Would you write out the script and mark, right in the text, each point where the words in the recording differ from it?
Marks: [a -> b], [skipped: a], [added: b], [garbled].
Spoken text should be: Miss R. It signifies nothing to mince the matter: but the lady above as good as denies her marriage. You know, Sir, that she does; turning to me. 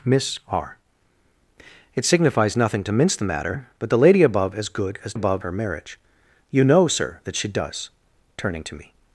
Miss R. It signifies nothing to mince the matter: but the lady above as good as [denies -> above] her marriage. You know, Sir, that she does; turning to me.